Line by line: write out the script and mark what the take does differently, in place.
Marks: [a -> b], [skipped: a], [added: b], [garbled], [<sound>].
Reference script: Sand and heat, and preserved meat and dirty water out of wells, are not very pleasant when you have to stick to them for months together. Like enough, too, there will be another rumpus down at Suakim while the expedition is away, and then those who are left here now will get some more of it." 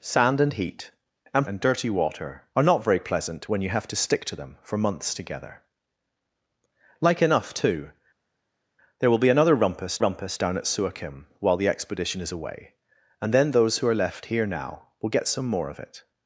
Sand and heat, and [skipped: preserved meat] and dirty water [skipped: out of wells,] are not very pleasant when you have to stick to them for months together. Like enough, too, there will be another rumpus [added: rumpus] down at Suakim while the expedition is away, and then those who are left here now will get some more of it."